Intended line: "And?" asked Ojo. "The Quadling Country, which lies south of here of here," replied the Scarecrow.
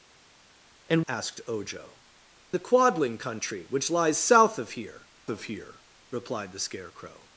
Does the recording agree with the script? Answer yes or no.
yes